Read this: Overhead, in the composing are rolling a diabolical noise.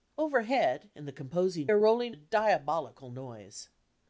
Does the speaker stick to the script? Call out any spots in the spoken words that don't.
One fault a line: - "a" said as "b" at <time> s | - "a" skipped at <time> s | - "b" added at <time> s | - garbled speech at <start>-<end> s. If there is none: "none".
none